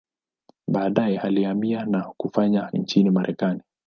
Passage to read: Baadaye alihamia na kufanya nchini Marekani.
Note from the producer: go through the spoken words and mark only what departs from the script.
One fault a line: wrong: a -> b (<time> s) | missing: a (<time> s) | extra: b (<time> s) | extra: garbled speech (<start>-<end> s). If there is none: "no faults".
no faults